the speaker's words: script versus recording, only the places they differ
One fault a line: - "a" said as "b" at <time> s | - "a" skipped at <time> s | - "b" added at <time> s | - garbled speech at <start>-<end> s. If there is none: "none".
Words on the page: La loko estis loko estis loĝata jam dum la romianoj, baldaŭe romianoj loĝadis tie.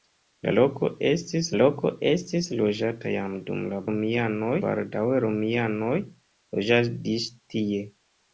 none